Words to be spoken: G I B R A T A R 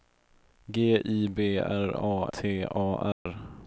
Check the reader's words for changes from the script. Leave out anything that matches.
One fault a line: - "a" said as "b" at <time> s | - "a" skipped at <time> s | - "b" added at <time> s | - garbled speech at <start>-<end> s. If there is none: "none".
none